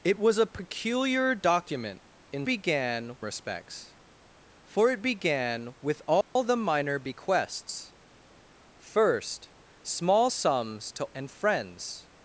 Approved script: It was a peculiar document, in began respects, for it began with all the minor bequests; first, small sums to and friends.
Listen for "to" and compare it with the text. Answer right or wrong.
right